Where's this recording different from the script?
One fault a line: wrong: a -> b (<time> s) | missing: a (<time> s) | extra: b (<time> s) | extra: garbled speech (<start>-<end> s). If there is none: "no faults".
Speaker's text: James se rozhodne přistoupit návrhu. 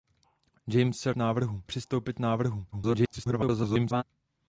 wrong: rozhodne -> návrhu (1.1 s)
extra: garbled speech (2.7-4.0 s)